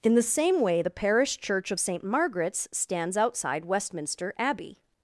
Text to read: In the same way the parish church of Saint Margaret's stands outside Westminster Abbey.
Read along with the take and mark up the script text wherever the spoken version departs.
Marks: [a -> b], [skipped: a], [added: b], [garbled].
In the same way the parish church of Saint Margaret's stands outside Westminster Abbey.